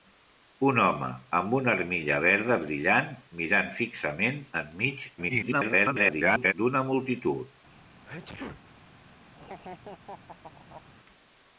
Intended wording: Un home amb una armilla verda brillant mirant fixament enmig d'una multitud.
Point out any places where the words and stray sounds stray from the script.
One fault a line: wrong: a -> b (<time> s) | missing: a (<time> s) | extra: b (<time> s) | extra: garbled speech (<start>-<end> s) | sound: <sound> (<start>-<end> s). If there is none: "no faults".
extra: garbled speech (5.2-6.5 s)
sound: sneeze (8.0-8.6 s)
sound: laugh (9.3-10.8 s)